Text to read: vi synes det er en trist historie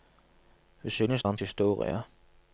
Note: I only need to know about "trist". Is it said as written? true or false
false